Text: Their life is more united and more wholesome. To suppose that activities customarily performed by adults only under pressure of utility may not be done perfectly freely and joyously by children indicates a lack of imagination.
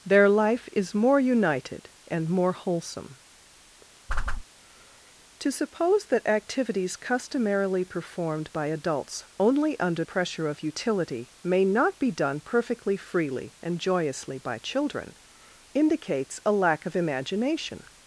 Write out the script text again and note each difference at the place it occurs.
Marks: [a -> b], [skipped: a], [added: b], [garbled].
Their life is more united and more wholesome. To suppose that activities customarily performed by adults only under pressure of utility may not be done perfectly freely and joyously by children indicates a lack of imagination.